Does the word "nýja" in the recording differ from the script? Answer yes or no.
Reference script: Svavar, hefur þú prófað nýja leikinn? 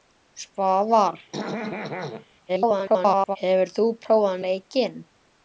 yes